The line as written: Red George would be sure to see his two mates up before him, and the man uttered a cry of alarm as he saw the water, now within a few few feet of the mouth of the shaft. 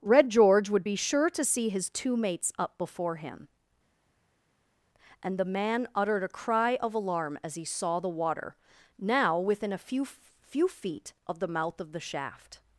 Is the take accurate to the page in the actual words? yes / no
yes